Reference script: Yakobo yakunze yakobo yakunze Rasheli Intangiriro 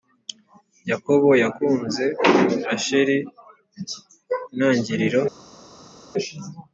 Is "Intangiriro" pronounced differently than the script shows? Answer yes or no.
no